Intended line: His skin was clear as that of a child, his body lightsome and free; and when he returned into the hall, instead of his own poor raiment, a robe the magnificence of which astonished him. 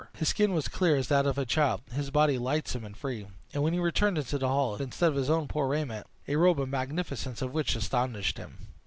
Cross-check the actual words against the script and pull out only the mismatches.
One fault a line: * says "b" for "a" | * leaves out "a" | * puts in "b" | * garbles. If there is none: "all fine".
all fine